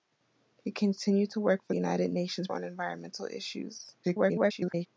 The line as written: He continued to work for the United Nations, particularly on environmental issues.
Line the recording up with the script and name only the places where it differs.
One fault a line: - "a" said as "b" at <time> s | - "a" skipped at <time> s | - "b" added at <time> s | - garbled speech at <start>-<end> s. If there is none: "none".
- "the" skipped at 1.7 s
- "particularly" skipped at 2.5 s
- garbled speech at 4.0-4.9 s